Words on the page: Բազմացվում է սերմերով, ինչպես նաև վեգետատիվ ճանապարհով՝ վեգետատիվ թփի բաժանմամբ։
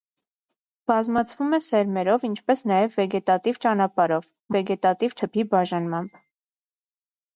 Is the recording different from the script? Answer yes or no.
no